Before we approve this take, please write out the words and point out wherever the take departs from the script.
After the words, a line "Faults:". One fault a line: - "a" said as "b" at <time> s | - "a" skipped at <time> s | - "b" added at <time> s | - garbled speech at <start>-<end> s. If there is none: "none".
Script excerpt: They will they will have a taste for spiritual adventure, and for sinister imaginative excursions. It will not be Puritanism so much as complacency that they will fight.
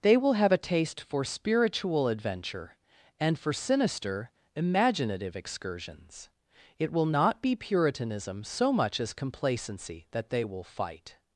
They will have a taste for spiritual adventure, and for sinister imaginative excursions. It will not be Puritanism so much as complacency that they will fight.
Faults:
- "they will" skipped at 0.3 s